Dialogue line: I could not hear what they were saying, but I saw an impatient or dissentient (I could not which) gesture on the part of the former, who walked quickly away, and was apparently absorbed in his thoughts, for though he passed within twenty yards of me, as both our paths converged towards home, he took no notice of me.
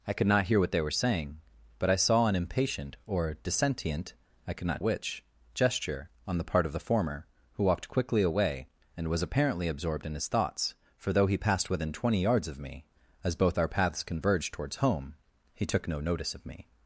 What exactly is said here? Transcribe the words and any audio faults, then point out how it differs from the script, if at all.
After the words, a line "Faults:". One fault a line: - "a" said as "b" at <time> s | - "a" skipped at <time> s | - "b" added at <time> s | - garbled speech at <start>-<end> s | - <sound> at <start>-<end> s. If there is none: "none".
I could not hear what they were saying, but I saw an impatient or dissentient (I could not which) gesture on the part of the former, who walked quickly away, and was apparently absorbed in his thoughts, for though he passed within twenty yards of me, as both our paths converged towards home, he took no notice of me.
Faults:
none